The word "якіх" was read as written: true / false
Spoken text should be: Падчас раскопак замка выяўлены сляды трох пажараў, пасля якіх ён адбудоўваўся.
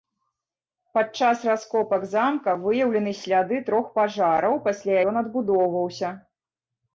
false